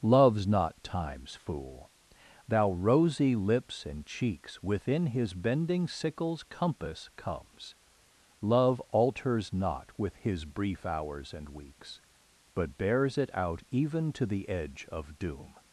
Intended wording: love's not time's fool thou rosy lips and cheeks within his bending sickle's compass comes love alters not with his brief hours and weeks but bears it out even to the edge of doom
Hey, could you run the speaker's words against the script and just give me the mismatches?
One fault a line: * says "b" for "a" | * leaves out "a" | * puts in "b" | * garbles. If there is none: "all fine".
all fine